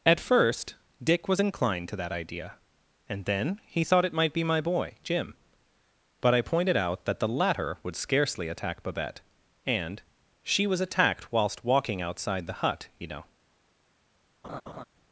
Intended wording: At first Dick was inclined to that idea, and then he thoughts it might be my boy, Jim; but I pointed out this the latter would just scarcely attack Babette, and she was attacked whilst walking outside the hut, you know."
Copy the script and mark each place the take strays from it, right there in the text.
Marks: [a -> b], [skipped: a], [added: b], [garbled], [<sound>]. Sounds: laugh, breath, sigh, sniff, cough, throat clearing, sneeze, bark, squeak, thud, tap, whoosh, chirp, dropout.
At first Dick was inclined to that idea, and then he [thoughts -> thought] it might be my boy, Jim; but I pointed out [this -> that] the latter would [skipped: just] scarcely attack Babette, and she was attacked whilst walking outside the hut, you know." [laugh]